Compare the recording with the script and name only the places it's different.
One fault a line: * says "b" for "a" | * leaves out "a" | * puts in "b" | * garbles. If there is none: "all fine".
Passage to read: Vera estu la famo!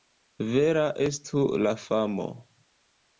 all fine